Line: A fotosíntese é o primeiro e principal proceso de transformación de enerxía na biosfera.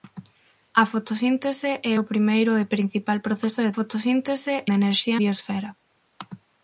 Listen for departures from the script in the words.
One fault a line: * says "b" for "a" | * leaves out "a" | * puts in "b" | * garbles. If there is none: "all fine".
* says "fotosíntese" for "transformación"
* leaves out "na"